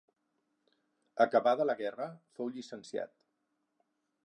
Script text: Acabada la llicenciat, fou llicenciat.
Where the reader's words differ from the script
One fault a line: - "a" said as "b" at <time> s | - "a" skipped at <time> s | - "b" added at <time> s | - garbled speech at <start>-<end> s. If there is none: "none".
- "llicenciat" said as "guerra" at 1.8 s